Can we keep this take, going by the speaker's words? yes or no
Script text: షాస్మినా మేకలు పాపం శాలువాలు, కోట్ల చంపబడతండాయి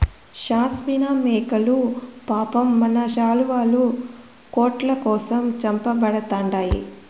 no